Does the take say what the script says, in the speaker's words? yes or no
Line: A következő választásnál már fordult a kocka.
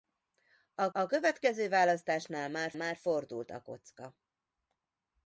no